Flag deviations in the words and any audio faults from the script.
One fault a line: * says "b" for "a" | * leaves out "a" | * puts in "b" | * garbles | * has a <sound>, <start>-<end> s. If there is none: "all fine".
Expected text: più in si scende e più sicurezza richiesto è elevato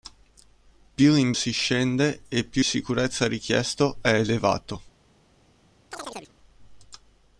* has a chirp, 5.9-6.3 s